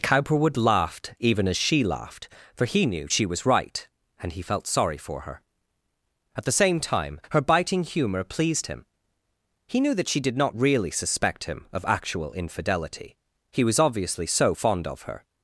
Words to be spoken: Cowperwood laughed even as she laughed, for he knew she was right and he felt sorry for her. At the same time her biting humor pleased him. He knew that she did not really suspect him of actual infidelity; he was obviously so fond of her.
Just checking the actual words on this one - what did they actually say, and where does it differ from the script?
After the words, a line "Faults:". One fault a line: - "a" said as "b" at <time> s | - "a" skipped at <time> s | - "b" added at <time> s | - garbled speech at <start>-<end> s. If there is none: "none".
Cowperwood laughed even as she laughed, for he knew she was right and he felt sorry for her. At the same time her biting humor pleased him. He knew that she did not really suspect him of actual infidelity; he was obviously so fond of her.
Faults:
none